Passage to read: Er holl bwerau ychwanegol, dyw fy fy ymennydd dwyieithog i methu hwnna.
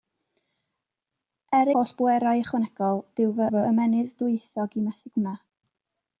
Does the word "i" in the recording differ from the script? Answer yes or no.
no